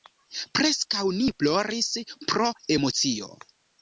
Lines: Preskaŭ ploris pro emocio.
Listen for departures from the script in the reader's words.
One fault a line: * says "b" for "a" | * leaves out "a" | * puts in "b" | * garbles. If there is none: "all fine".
* puts in "ni"